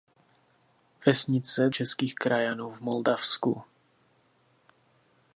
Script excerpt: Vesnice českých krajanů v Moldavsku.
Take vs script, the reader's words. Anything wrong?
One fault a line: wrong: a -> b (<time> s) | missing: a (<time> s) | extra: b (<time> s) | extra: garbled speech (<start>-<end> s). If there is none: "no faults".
no faults